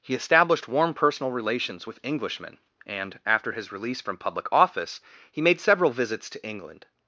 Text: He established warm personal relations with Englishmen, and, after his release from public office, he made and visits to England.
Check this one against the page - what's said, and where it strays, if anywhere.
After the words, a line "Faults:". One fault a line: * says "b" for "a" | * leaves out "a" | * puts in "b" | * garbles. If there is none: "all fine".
He established warm personal relations with Englishmen, and, after his release from public office, he made several visits to England.
Faults:
* says "several" for "and"